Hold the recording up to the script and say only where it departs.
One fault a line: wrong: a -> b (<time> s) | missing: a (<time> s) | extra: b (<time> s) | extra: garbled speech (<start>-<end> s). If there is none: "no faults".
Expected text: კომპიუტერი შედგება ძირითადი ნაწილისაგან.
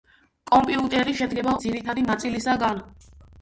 no faults